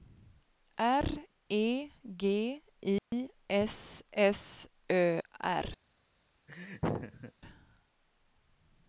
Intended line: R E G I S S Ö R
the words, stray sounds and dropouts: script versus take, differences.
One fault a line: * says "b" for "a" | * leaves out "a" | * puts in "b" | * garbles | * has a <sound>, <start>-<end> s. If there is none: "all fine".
* has a dropout, 3.0-3.1 s
* has a laugh, 6.5-7.3 s